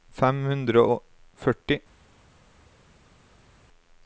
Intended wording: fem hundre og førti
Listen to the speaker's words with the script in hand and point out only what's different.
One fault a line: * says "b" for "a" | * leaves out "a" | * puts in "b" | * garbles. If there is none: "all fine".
all fine